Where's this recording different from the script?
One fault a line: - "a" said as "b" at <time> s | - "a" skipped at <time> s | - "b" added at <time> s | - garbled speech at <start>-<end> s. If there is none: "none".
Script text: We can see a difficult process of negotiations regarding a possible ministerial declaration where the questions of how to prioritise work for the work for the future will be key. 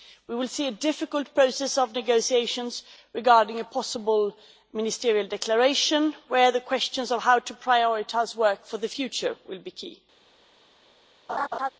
- "can" said as "will" at 0.3 s
- "work for the" skipped at 8.9 s